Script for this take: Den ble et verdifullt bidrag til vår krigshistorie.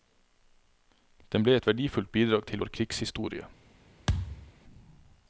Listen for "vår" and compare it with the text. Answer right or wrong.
right